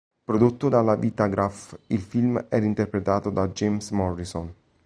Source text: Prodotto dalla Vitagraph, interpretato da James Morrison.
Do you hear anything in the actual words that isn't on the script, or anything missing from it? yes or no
yes